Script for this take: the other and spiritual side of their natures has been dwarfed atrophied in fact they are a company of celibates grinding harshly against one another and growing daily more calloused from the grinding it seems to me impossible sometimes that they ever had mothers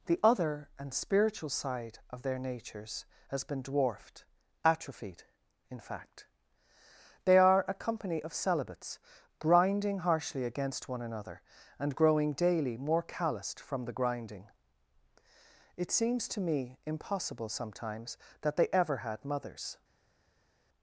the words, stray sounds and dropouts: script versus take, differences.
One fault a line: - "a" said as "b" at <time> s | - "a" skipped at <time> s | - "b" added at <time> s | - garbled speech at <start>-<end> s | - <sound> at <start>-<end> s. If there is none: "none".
none